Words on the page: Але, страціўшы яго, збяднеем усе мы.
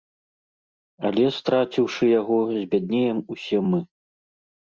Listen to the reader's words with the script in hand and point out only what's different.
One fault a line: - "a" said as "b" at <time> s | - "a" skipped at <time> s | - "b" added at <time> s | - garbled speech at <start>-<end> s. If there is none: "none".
none